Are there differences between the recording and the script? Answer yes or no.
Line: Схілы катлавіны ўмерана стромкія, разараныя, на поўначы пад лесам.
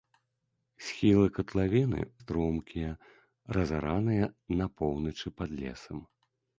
yes